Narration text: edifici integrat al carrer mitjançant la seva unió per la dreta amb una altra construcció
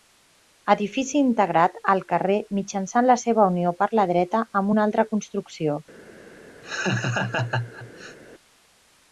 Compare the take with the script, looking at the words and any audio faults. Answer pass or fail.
fail